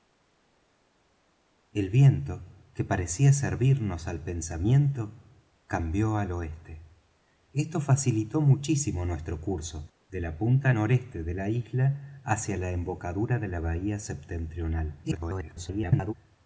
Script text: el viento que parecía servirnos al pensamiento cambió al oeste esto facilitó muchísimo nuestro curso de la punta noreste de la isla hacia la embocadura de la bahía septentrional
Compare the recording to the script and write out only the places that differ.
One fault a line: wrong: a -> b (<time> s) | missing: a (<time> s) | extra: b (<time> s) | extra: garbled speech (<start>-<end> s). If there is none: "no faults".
extra: garbled speech (15.0-16.1 s)